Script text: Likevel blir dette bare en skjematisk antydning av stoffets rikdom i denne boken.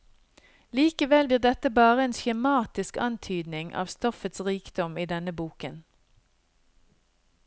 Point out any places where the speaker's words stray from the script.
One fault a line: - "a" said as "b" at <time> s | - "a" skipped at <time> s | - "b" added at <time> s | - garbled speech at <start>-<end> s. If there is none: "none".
none